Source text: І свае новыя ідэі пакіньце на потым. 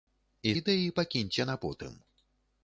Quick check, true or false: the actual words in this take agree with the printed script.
false